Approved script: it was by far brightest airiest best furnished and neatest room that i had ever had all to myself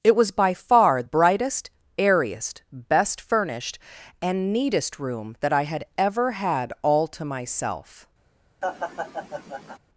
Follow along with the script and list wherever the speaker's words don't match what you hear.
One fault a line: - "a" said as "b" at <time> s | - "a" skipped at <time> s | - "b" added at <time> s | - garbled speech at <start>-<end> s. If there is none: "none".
none